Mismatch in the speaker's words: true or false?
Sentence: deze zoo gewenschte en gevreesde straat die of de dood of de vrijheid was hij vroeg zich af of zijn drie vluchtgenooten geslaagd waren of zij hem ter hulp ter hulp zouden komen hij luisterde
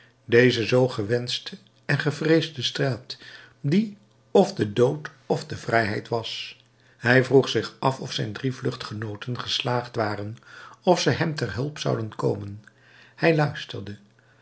true